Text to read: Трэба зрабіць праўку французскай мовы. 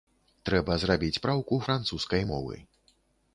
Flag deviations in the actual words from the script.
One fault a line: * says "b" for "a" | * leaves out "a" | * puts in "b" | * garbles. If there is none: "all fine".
all fine